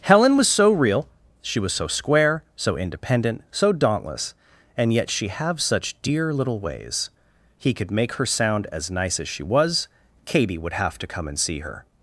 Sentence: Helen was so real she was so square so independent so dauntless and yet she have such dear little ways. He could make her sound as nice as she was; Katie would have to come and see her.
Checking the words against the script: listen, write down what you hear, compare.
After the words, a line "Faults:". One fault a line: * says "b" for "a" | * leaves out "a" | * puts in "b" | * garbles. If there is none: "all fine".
Helen was so real she was so square so independent so dauntless and yet she have such dear little ways. He could make her sound as nice as she was; Katie would have to come and see her.
Faults:
all fine